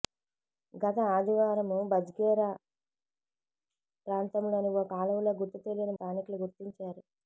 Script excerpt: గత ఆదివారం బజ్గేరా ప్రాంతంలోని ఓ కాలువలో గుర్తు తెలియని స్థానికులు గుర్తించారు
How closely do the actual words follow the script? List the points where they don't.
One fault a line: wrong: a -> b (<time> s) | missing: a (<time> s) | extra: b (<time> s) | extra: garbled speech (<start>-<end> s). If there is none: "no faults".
no faults